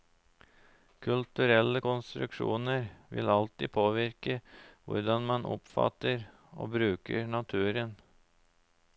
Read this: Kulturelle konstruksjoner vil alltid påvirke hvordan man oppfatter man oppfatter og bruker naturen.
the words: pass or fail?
fail